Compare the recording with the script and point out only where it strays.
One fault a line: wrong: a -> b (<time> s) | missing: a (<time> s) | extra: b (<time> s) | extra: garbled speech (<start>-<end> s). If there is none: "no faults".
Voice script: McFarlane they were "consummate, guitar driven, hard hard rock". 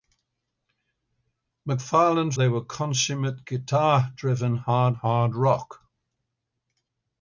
no faults